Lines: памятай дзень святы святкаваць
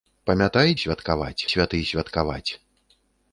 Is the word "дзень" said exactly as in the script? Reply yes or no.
no